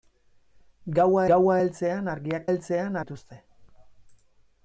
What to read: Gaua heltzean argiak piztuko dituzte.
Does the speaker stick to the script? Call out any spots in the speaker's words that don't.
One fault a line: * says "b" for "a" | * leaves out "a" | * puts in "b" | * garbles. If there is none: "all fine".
* puts in "gaua"
* says "heltzean" for "piztuko"